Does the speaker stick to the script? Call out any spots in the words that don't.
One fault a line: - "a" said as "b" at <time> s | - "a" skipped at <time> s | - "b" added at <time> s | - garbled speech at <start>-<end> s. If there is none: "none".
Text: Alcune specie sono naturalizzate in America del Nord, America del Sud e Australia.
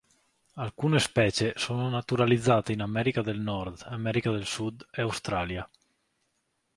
none